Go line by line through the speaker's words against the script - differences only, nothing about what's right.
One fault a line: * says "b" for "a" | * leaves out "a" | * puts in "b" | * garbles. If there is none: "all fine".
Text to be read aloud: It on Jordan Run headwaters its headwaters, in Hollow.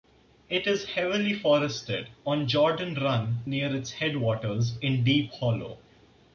* puts in "is heavily forested"
* says "near" for "headwaters"
* puts in "Deep"